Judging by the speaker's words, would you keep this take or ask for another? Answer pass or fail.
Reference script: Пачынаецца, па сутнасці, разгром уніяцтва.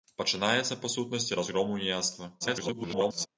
fail